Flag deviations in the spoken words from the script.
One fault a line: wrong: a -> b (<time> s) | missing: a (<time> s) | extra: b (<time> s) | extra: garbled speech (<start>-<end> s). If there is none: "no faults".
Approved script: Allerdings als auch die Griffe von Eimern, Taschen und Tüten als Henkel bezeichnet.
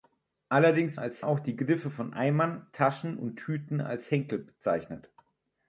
no faults